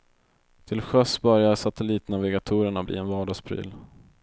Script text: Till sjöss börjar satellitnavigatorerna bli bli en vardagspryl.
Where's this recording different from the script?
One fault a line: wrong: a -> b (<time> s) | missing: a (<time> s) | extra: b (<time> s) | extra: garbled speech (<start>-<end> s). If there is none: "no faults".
missing: bli (3.0 s)